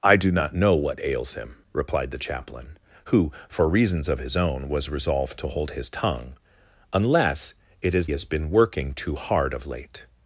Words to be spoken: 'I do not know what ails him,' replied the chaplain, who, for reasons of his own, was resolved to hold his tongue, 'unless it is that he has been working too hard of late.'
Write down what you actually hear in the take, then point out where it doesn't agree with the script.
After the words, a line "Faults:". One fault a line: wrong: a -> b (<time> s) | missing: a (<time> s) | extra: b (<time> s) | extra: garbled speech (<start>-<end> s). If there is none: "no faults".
'I do not know what ails him,' replied the chaplain, who, for reasons of his own, was resolved to hold his tongue, 'unless it is has been working too hard of late.'
Faults:
missing: that he (8.1 s)